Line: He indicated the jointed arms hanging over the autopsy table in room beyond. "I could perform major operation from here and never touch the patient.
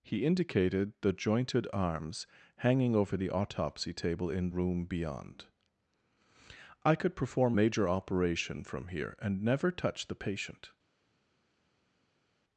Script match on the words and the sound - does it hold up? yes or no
yes